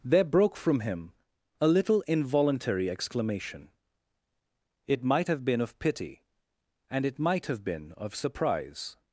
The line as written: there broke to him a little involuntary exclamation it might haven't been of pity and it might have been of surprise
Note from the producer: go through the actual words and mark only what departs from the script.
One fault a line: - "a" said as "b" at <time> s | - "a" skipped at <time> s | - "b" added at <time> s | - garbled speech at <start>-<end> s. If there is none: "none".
- "to" said as "from" at 0.6 s
- "haven't" said as "have" at 5.3 s